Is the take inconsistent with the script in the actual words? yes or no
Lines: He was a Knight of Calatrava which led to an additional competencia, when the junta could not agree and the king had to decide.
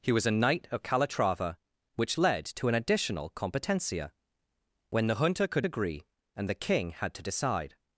yes